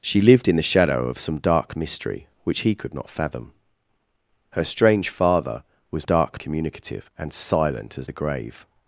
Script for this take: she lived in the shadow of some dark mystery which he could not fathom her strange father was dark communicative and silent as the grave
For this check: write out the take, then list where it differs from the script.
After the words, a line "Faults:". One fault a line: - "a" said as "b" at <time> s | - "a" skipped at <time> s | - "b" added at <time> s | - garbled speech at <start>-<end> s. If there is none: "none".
she lived in the shadow of some dark mystery which he could not fathom her strange father was dark communicative and silent as the grave
Faults:
none